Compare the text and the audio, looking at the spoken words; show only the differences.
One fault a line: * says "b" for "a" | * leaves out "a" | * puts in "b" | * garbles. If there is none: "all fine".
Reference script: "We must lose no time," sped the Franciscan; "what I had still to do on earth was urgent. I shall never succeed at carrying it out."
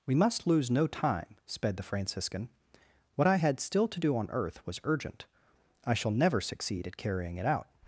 all fine